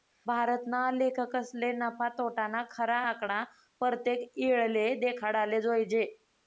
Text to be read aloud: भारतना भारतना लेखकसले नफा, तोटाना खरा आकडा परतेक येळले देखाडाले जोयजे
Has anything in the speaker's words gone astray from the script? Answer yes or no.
yes